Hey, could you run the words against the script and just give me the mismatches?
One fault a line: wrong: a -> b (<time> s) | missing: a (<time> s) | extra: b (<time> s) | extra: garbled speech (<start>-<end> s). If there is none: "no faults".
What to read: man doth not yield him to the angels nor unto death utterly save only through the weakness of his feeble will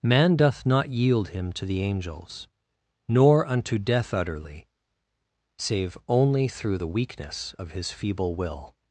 no faults